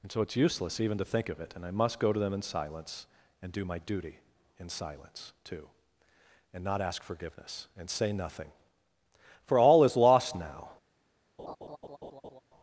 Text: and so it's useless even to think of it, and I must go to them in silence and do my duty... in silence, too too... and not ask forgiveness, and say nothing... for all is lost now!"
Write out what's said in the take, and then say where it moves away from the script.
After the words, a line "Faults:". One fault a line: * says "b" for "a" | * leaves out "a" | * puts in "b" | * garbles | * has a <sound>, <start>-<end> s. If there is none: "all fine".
and so it's useless even to think of it, and I must go to them in silence and do my duty... in silence, too... and not ask forgiveness, and say nothing... for all is lost now!"
Faults:
* leaves out "too"
* has a laugh, 11.4-12.4 s